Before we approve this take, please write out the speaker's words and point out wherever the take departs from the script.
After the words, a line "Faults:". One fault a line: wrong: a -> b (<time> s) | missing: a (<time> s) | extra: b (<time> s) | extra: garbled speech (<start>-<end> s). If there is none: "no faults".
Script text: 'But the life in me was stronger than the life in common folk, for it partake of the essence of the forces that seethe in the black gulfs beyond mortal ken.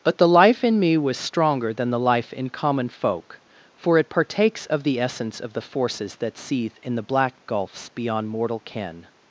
'But the life in me was stronger than the life in common folk, for it partakes of the essence of the forces that seethe in the black gulfs beyond mortal ken.
Faults:
wrong: partake -> partakes (4.1 s)